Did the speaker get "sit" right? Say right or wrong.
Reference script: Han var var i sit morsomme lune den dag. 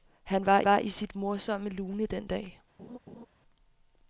right